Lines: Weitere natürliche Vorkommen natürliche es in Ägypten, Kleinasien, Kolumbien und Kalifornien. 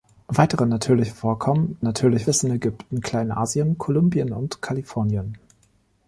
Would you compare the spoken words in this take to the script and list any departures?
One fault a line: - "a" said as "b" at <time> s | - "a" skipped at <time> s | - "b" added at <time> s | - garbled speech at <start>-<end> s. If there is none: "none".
none